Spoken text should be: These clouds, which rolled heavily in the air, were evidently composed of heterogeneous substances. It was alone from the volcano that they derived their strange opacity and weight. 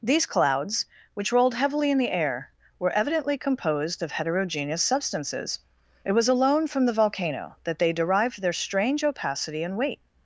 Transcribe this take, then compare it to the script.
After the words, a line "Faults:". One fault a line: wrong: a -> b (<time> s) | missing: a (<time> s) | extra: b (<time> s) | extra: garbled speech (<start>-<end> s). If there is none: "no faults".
These clouds, which rolled heavily in the air, were evidently composed of heterogeneous substances. It was alone from the volcano that they derived their strange opacity and weight.
Faults:
no faults